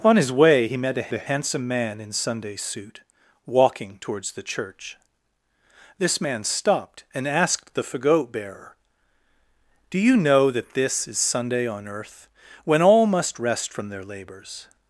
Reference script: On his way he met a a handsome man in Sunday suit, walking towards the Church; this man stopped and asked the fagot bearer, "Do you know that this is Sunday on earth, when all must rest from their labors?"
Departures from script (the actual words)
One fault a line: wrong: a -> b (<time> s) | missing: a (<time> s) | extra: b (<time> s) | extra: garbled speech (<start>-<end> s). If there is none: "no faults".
no faults